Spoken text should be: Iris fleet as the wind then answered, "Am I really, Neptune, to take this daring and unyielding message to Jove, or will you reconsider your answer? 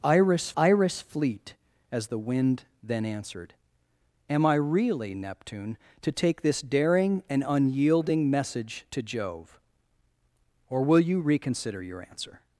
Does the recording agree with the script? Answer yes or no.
no